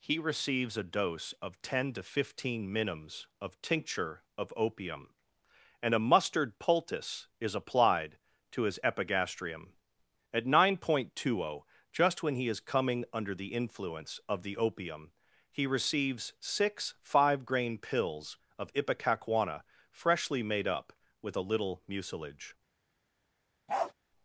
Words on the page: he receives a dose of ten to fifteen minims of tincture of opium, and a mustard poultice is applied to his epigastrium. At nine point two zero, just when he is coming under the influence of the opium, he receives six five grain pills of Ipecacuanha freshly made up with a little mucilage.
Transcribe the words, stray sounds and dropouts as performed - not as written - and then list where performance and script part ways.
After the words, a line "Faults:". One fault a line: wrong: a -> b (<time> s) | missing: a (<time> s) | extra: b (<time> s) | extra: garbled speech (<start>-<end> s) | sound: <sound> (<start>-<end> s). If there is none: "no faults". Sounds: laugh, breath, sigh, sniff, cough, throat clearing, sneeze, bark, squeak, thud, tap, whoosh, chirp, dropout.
he receives a dose of ten to fifteen minims of tincture of opium, and a mustard poultice is applied to his epigastrium. At nine point two zero, just when he is coming under the influence of the opium, he receives six five grain pills of Ipecacuanha freshly made up with a little mucilage.
Faults:
sound: bark (23.7-23.9 s)